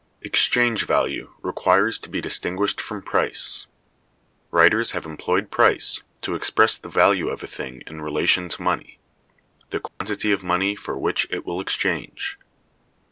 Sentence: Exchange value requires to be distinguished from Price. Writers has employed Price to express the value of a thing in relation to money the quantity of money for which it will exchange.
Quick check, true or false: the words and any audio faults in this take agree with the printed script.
false